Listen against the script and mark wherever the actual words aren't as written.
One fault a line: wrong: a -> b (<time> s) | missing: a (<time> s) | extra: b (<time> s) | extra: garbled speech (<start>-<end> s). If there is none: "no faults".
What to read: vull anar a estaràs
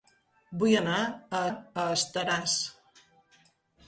extra: a (1.5 s)